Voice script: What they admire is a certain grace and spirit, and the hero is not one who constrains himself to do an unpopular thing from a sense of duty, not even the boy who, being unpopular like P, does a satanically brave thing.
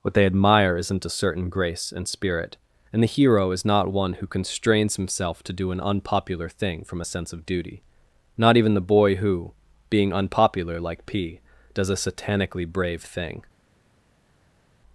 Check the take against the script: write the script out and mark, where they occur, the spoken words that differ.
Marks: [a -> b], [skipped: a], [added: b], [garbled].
What they admire [is -> isn't] a certain grace and spirit, and the hero is not one who constrains himself to do an unpopular thing from a sense of duty, not even the boy who, being unpopular like P, does a satanically brave thing.